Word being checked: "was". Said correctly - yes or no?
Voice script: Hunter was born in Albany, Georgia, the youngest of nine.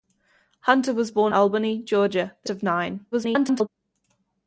yes